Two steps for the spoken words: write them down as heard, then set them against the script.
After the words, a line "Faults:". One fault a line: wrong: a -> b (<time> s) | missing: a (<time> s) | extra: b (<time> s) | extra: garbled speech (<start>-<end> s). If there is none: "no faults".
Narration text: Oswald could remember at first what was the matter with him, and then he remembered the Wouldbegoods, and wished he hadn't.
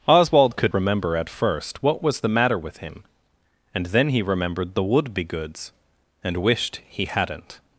Oswald could remember at first what was the matter with him, and then he remembered the Wouldbegoods, and wished he hadn't.
Faults:
no faults